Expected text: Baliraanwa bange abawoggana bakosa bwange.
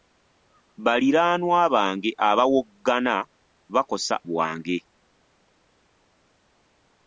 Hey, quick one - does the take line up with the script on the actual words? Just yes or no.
yes